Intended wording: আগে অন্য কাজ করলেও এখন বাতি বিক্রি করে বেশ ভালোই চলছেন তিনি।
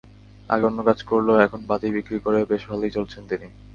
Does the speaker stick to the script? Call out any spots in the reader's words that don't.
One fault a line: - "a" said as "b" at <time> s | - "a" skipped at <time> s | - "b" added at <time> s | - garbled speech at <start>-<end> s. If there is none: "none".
none